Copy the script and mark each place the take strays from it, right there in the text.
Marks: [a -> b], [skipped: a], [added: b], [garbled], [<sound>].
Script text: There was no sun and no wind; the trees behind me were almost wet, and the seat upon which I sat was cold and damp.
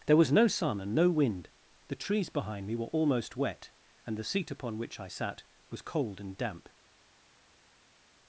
There was no sun and no wind; the trees behind me were almost wet, and the seat upon which I sat was cold and damp.